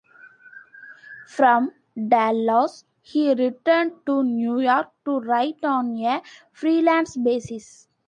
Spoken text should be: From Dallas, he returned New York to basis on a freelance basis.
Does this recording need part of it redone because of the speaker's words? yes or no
yes